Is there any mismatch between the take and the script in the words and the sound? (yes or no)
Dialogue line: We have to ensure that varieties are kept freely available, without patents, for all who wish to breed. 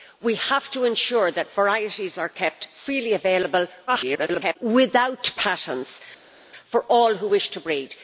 yes